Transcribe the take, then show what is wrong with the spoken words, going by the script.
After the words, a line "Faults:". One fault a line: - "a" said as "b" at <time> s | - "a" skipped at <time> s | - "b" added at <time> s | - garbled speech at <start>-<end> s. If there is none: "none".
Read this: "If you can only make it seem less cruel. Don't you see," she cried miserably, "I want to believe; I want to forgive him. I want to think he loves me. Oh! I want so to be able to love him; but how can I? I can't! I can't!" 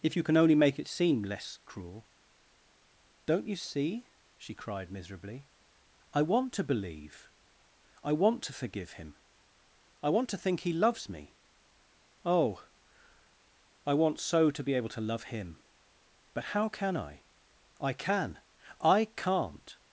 "If you can only make it seem less cruel. Don't you see," she cried miserably, "I want to believe; I want to forgive him. I want to think he loves me. Oh! I want so to be able to love him; but how can I? I can! I can't!"
Faults:
- "can't" said as "can" at 17.9 s